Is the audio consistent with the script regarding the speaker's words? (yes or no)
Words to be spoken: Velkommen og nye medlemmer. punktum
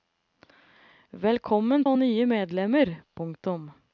yes